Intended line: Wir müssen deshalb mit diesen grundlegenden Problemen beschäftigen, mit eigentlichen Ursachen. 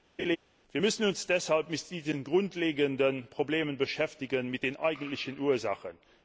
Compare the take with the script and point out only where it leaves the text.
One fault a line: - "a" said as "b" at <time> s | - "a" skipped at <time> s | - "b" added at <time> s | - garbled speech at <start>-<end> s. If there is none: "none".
- "uns" added at 1.1 s
- "den" added at 4.6 s